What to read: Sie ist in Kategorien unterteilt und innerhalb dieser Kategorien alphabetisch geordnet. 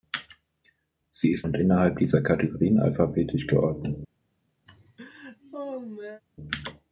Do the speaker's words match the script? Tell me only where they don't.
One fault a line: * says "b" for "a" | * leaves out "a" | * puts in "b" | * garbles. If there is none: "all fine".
* leaves out "in Kategorien unterteilt"